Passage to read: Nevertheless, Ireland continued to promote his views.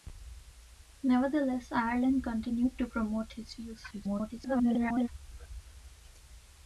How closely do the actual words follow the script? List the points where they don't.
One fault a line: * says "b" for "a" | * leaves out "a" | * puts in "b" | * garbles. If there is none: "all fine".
* garbles